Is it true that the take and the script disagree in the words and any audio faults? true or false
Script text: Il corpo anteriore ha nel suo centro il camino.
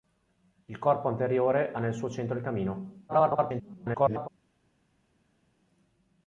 true